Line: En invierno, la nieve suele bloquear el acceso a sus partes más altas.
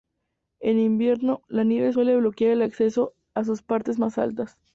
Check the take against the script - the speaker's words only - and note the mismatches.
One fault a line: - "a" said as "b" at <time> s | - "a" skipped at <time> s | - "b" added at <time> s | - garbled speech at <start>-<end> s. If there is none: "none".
none